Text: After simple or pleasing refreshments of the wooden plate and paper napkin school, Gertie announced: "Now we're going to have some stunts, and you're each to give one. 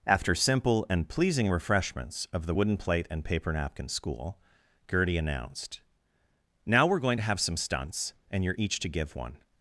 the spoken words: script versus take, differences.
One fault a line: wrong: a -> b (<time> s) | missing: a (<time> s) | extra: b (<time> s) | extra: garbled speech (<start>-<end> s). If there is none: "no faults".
wrong: or -> and (0.9 s)